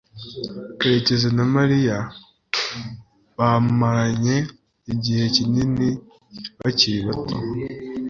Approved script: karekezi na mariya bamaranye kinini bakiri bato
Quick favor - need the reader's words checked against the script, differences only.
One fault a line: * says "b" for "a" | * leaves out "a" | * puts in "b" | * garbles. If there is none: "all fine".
* puts in "igihe"